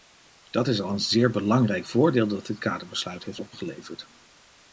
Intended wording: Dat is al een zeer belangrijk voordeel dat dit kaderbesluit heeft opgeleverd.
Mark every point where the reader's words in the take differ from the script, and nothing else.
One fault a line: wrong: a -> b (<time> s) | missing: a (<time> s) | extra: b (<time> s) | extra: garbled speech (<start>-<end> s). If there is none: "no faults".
no faults